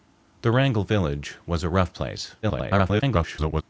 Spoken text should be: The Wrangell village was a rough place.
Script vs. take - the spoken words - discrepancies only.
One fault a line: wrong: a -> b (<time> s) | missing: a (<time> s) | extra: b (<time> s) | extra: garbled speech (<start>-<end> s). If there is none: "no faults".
extra: garbled speech (2.4-3.6 s)